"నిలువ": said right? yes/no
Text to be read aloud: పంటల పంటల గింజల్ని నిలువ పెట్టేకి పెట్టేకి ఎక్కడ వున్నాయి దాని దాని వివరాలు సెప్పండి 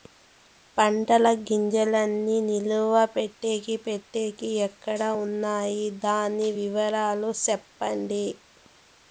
yes